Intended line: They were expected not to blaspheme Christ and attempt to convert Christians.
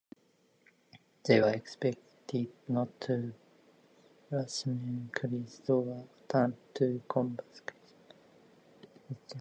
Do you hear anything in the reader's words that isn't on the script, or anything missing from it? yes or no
yes